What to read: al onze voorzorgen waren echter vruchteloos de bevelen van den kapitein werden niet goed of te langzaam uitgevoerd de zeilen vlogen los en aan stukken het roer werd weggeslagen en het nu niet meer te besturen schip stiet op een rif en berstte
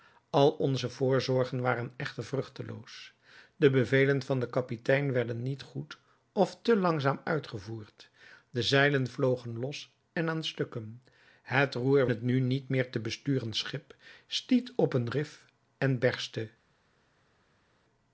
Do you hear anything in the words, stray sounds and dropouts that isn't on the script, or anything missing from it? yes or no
yes